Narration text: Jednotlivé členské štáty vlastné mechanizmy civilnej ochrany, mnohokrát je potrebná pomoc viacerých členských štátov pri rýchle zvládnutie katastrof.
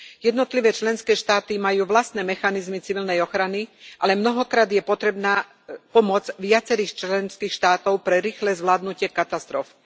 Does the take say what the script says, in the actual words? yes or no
no